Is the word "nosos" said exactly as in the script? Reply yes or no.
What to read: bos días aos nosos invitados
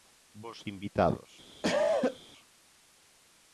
no